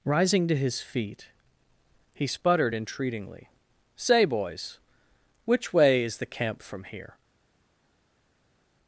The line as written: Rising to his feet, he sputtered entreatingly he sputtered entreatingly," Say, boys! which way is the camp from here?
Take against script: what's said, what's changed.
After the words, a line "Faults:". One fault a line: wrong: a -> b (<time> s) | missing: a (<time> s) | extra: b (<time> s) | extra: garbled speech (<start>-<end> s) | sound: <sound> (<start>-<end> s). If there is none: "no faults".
Rising to his feet, he sputtered entreatingly," Say, boys! which way is the camp from here?
Faults:
missing: he sputtered entreatingly (3.5 s)